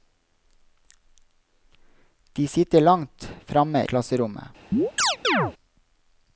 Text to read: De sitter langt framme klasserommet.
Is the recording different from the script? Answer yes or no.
no